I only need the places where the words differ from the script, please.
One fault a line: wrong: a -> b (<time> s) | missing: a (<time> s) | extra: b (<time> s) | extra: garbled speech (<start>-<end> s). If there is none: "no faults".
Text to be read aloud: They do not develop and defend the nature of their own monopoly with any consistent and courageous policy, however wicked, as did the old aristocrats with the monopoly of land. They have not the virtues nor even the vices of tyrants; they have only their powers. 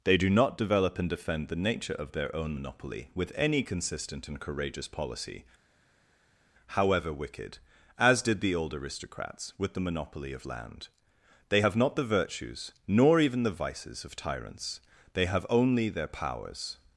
no faults